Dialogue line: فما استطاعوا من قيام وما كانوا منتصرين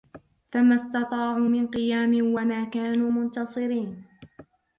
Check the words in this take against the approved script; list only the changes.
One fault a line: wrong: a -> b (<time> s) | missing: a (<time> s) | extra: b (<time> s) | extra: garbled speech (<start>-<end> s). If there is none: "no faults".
no faults